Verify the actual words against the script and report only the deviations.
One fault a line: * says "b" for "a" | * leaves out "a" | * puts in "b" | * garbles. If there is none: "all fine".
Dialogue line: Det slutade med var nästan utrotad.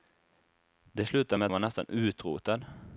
all fine